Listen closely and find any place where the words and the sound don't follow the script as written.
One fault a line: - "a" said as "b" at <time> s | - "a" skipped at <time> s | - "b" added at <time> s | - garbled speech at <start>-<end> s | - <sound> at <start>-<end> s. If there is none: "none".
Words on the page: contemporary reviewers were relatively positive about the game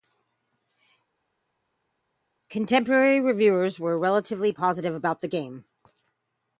none